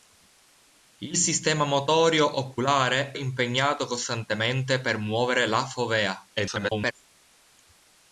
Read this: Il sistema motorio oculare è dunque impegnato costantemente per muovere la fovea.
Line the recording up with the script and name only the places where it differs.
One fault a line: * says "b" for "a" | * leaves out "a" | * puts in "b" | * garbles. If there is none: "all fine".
* leaves out "è dunque"
* garbles